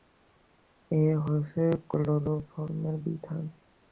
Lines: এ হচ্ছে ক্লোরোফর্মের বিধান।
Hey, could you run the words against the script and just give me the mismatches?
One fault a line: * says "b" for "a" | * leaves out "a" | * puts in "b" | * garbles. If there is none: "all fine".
all fine